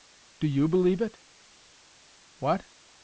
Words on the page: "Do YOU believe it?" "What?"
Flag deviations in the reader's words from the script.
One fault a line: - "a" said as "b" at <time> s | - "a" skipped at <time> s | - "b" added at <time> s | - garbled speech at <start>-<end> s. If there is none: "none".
none